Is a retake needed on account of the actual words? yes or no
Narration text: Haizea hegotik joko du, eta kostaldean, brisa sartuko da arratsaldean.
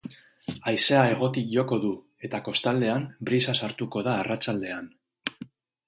no